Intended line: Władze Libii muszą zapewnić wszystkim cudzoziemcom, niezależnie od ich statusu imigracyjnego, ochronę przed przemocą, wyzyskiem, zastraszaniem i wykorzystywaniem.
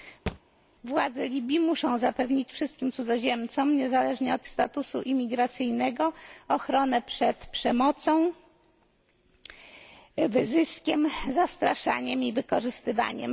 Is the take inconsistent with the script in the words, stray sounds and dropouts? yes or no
yes